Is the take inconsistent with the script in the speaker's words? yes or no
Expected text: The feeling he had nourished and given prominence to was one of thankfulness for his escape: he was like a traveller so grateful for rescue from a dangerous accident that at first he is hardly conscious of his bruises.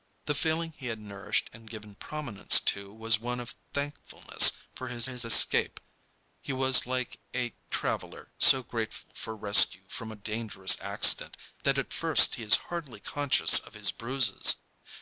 yes